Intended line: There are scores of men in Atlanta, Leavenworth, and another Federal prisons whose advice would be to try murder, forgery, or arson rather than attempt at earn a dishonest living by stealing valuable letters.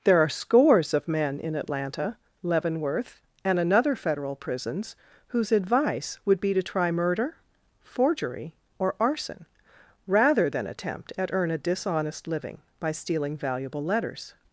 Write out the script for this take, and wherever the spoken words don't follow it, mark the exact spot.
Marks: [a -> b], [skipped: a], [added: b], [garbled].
There are scores of men in Atlanta, Leavenworth, and another Federal prisons whose advice would be to try murder, forgery, or arson rather than attempt at earn a dishonest living by stealing valuable letters.